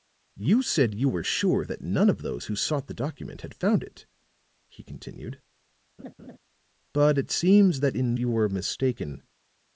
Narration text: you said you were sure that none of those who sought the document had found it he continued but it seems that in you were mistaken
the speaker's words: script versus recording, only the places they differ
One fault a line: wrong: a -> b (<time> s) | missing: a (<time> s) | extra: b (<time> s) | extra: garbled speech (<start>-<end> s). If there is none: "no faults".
no faults